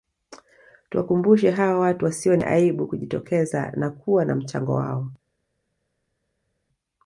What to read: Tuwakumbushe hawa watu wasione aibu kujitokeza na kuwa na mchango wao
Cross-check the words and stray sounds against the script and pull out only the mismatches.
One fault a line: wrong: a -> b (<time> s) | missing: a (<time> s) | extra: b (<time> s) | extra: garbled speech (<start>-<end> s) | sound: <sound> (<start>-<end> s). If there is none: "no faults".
no faults